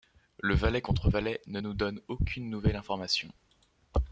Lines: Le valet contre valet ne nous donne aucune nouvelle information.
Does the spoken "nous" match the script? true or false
true